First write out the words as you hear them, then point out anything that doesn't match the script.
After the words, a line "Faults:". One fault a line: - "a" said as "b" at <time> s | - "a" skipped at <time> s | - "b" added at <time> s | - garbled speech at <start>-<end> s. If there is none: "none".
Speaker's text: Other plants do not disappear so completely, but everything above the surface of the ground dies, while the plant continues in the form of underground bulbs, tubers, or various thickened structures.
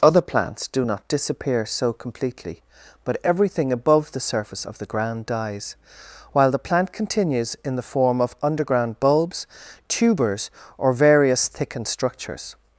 Other plants do not disappear so completely, but everything above the surface of the ground dies, while the plant continues in the form of underground bulbs, tubers, or various thickened structures.
Faults:
none